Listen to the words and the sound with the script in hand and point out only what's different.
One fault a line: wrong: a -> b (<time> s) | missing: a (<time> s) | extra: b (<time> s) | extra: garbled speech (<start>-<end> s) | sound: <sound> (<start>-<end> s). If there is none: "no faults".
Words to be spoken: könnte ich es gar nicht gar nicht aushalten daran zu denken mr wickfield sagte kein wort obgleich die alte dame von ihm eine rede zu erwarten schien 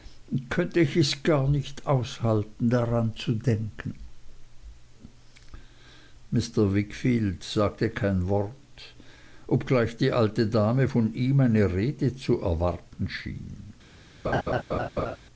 missing: gar nicht (1.9 s)
sound: laugh (14.2-15.2 s)